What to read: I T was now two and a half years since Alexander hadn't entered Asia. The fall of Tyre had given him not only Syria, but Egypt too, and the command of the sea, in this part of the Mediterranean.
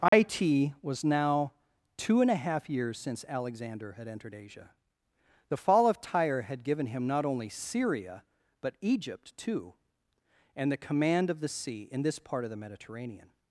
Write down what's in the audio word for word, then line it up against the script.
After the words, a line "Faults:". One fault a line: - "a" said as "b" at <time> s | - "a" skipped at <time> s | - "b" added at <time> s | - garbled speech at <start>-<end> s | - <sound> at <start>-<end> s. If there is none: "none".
I T was now two and a half years since Alexander had entered Asia. The fall of Tyre had given him not only Syria, but Egypt too, and the command of the sea, in this part of the Mediterranean.
Faults:
- dropout at 0.1-0.1 s
- "hadn't" said as "had" at 3.9 s